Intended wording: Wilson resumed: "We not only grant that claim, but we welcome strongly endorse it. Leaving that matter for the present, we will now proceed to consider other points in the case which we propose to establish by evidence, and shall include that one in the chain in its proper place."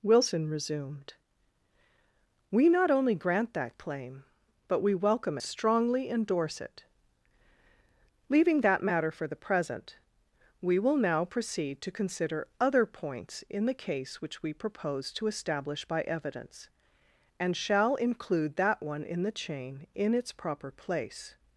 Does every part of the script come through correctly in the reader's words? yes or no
yes